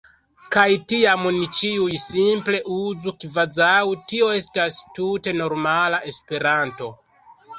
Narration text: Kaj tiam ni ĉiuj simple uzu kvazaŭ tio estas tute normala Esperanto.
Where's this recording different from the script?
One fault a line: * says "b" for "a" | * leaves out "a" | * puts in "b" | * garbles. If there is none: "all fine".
all fine